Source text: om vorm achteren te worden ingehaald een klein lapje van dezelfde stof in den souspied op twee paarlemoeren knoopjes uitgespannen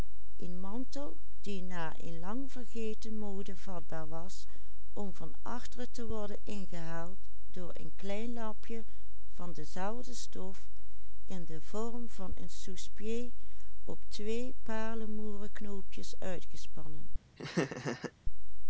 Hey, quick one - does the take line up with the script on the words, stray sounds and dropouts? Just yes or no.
no